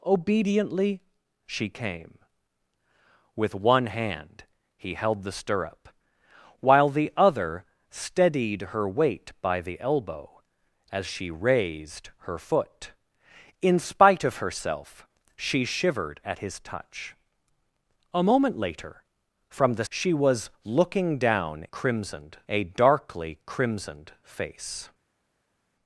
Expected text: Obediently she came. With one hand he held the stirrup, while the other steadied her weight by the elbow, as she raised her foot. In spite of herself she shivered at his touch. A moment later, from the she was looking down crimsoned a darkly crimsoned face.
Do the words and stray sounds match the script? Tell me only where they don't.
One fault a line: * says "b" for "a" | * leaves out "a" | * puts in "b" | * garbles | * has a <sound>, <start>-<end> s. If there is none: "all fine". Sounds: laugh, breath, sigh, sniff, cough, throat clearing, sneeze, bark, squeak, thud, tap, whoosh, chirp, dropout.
all fine